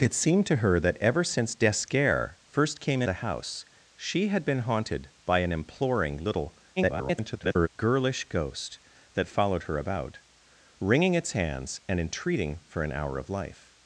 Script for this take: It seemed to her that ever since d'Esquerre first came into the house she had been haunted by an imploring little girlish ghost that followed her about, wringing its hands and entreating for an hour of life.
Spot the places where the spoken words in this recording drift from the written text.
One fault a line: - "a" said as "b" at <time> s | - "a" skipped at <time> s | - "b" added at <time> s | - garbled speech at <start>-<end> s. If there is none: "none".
- "into" skipped at 3.0 s
- garbled speech at 6.8-7.7 s